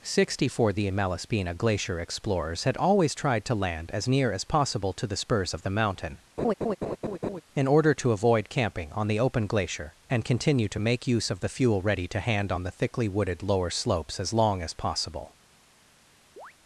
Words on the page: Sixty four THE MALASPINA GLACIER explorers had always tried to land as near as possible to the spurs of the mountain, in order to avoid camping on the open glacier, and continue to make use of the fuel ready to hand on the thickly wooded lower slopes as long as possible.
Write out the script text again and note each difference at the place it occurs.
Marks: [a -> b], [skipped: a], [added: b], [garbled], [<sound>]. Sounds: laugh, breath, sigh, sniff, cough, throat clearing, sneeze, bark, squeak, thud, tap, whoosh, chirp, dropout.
Sixty four THE MALASPINA GLACIER explorers had always tried to land as near as possible to the spurs of the mountain, [laugh] in order to avoid camping on the open glacier, and continue to make use of the fuel ready to hand on the thickly wooded lower slopes as long as possible. [chirp]